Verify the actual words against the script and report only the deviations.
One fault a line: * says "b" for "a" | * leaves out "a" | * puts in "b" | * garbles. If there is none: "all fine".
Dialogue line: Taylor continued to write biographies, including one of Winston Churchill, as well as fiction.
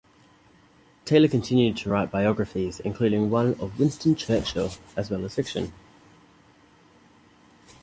all fine